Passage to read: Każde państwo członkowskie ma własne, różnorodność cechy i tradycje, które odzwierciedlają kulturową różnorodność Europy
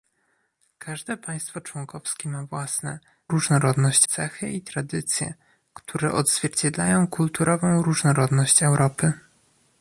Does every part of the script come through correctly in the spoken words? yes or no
yes